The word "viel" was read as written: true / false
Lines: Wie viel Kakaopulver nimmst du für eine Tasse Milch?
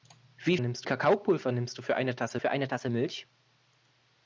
false